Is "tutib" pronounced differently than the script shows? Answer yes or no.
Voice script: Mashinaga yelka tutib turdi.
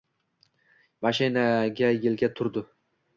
yes